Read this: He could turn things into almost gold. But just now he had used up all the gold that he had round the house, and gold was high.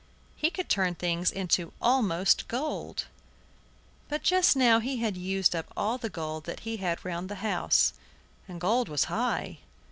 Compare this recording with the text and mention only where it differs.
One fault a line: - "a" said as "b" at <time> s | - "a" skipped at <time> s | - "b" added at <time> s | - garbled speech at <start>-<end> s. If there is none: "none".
none